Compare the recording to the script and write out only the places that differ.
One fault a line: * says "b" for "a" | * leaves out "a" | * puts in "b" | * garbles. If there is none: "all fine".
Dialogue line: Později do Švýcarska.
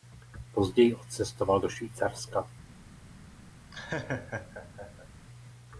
* puts in "odcestoval"